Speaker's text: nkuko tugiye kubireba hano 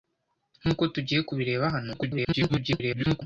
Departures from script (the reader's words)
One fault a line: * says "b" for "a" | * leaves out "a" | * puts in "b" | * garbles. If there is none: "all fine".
* garbles